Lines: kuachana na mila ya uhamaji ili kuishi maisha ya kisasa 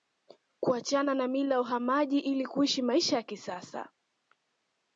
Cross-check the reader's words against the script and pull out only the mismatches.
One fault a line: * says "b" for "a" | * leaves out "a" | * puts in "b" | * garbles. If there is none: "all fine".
all fine